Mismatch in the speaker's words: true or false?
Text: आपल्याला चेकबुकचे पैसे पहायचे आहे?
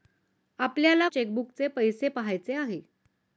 false